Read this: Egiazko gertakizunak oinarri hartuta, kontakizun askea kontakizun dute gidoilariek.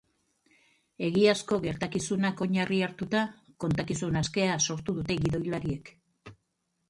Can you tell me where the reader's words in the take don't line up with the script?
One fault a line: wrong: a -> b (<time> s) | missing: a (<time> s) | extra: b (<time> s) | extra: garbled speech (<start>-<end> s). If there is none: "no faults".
wrong: kontakizun -> sortu (4.7 s)